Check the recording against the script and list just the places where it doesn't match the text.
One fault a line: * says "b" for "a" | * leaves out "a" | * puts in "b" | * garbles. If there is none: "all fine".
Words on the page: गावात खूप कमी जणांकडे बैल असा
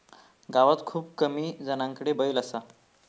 all fine